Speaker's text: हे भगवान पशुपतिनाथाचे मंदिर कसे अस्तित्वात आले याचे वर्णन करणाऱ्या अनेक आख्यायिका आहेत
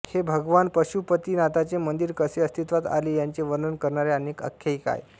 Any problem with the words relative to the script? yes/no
no